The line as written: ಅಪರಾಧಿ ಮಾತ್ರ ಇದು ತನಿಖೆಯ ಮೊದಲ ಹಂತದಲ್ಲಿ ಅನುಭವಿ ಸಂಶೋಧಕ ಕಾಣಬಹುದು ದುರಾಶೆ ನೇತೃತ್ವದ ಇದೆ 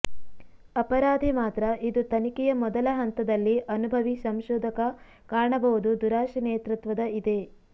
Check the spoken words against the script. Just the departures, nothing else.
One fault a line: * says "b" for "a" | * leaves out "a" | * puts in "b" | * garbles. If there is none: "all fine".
all fine